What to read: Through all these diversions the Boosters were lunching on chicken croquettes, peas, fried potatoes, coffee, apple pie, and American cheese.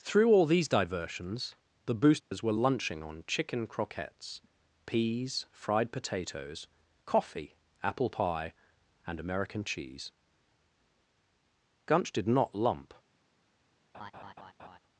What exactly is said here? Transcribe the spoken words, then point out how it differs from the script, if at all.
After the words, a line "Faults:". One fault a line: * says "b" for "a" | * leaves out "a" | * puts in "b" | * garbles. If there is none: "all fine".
Through all these diversions the Boosters were lunching on chicken croquettes, peas, fried potatoes, coffee, apple pie, and American cheese. Gunch did not lump
Faults:
* puts in "Gunch did not lump"